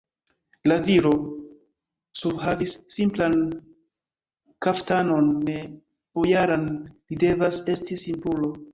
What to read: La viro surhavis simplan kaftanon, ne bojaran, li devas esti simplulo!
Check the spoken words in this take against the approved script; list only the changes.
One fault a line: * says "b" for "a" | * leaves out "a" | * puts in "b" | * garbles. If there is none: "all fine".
all fine